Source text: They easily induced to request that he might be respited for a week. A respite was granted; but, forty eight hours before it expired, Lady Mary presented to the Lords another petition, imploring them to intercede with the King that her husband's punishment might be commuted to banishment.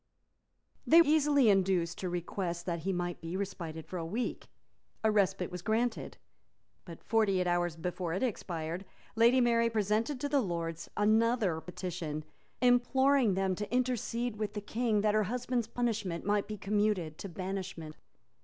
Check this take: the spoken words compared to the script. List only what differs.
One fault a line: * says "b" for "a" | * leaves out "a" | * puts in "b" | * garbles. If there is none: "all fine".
all fine